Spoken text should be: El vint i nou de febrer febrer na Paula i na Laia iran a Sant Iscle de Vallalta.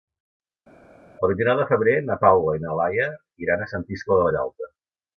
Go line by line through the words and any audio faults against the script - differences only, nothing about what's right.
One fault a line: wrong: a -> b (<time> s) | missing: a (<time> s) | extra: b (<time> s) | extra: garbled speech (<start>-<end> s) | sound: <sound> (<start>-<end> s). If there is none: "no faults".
missing: febrer (1.9 s)